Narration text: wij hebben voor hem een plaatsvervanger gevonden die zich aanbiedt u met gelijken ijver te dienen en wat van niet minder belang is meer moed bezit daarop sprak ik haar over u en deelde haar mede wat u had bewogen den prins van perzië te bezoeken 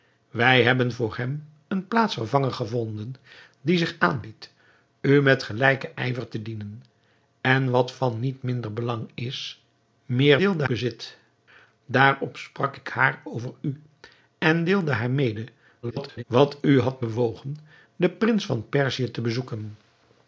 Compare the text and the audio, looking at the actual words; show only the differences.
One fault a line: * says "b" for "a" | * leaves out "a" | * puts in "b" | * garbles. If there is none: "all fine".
* says "deelde" for "moed"
* garbles